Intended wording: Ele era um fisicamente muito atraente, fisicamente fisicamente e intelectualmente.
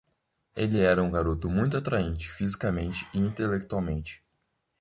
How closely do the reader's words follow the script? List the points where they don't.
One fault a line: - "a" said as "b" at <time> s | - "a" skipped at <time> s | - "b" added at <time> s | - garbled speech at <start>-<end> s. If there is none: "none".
- "fisicamente" said as "garoto" at 1.1 s
- "fisicamente" skipped at 3.0 s